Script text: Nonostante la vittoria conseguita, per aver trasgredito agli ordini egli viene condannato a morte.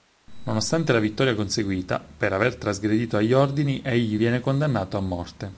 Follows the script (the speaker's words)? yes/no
yes